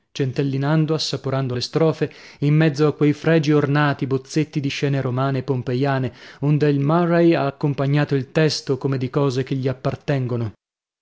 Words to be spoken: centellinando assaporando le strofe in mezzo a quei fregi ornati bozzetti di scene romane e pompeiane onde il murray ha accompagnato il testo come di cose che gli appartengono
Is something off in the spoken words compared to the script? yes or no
no